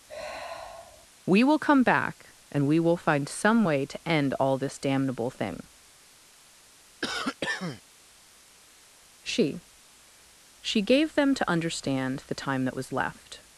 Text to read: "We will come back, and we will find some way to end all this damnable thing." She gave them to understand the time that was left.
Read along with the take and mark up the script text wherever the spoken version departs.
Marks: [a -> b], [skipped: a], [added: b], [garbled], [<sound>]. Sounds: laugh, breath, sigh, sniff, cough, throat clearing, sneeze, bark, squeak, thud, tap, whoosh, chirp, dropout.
[sigh] "We will come back, and we will find some way to end all this damnable thing." [cough] She [added: She] gave them to understand the time that was left.